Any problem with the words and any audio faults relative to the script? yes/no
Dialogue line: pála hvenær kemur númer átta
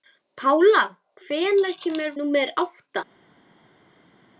no